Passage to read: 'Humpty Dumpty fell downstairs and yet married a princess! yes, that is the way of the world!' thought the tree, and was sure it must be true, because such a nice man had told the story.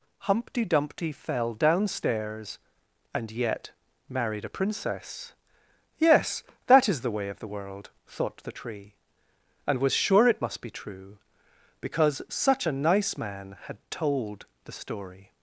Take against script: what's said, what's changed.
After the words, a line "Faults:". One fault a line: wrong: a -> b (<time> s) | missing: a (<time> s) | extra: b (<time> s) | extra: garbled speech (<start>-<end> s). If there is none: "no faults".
'Humpty Dumpty fell downstairs and yet married a princess! yes, that is the way of the world!' thought the tree, and was sure it must be true, because such a nice man had told the story.
Faults:
no faults